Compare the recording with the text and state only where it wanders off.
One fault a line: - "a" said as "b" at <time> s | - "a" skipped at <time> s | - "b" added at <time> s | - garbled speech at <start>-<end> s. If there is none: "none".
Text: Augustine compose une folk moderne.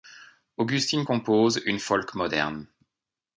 none